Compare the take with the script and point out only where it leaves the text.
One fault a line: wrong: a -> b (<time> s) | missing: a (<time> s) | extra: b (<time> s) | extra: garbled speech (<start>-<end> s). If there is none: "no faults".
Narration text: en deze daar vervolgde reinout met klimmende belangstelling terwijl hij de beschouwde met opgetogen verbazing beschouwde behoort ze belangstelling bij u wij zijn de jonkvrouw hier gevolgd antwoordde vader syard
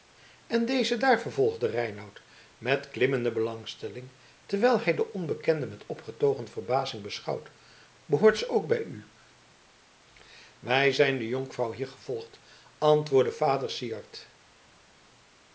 wrong: beschouwde -> onbekende (5.1 s)
wrong: belangstelling -> ook (8.5 s)